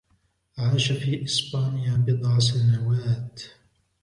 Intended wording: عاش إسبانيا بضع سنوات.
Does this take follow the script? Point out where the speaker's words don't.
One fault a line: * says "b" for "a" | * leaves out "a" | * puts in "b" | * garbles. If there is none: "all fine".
* puts in "في"